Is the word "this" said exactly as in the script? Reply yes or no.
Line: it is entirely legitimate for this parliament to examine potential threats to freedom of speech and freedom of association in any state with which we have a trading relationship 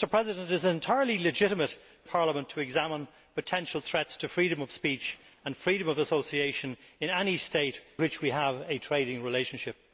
no